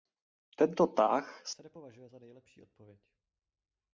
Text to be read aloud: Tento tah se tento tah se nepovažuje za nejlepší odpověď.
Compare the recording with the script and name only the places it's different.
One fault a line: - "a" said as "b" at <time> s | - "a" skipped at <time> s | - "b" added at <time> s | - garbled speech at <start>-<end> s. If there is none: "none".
- "tento tah se" skipped at 1.6 s